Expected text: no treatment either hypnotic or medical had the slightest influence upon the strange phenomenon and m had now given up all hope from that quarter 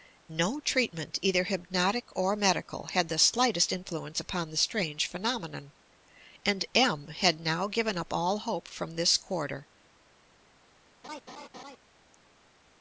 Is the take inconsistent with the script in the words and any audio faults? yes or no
yes